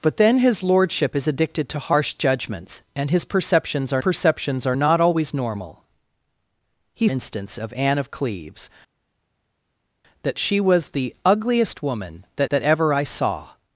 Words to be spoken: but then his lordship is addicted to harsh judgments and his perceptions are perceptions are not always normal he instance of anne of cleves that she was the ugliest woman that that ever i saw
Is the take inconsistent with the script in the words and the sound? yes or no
no